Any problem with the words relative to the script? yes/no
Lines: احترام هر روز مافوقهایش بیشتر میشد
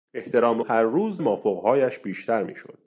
no